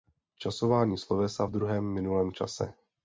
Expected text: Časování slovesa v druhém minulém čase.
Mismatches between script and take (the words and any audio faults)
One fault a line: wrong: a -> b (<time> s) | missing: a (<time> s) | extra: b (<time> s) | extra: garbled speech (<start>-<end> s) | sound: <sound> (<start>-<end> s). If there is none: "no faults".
no faults